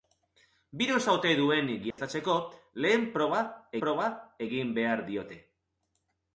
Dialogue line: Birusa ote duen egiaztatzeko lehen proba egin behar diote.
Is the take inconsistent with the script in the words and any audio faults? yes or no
yes